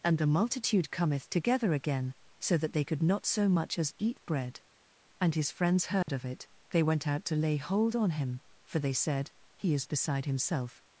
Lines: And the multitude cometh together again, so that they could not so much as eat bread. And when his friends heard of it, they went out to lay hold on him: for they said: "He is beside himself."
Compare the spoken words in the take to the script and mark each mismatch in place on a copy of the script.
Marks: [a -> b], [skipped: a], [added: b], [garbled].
And the multitude cometh together again, so that they could not so much as eat bread. And [skipped: when] his friends heard of it, they went out to lay hold on him: for they said: "He is beside himself."